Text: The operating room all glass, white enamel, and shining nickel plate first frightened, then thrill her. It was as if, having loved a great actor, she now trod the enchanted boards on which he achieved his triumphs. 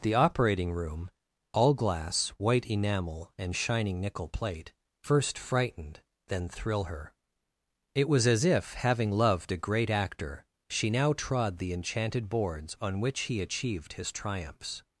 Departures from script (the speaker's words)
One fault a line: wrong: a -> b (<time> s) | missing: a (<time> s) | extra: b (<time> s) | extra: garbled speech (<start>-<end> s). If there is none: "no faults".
no faults